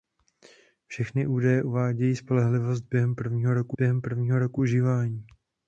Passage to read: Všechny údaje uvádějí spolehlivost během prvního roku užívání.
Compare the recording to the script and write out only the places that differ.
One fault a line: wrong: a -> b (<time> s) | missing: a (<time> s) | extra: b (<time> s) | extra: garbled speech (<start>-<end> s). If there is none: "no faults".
extra: během prvního roku (3.8 s)